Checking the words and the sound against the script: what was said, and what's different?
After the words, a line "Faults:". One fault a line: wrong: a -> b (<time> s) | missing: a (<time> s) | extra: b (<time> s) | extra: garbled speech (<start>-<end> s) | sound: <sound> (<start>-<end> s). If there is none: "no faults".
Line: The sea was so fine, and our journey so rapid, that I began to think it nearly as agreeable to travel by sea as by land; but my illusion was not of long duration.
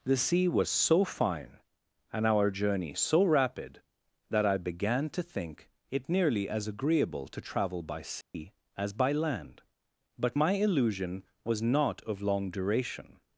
The sea was so fine, and our journey so rapid, that I began to think it nearly as agreeable to travel by sea as by land; but my illusion was not of long duration.
Faults:
sound: dropout (8.2-8.3 s)